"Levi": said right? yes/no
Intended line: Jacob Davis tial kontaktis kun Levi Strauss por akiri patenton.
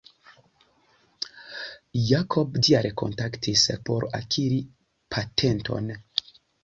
no